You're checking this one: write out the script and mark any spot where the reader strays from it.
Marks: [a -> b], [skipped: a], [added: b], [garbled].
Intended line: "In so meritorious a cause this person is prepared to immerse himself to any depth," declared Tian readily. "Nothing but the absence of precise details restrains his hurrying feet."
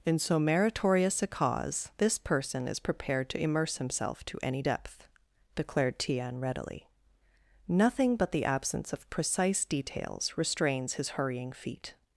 "In so meritorious a cause this person is prepared to immerse himself to any depth," declared Tian readily. "Nothing but the absence of precise details restrains his hurrying feet."